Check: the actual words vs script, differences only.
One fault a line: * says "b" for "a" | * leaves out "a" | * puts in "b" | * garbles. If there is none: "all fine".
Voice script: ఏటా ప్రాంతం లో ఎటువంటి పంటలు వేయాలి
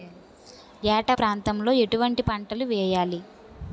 all fine